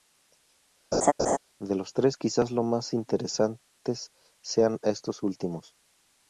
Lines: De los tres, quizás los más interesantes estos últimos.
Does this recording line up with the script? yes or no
no